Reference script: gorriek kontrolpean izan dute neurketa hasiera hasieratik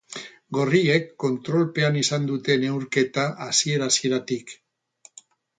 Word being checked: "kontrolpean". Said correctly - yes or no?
yes